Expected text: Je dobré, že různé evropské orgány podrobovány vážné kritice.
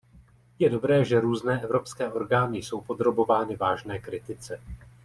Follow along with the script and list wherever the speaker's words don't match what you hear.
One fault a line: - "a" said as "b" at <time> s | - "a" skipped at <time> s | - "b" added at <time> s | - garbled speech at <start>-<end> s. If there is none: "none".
- "jsou" added at 2.6 s